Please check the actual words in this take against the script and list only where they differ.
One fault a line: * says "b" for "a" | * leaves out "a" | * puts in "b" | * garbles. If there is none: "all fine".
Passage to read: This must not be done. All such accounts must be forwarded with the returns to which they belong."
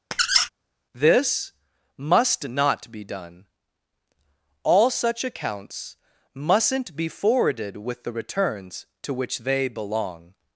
* says "mustn't" for "must"